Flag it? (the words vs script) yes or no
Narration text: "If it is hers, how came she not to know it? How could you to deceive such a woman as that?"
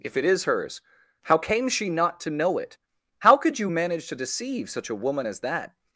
yes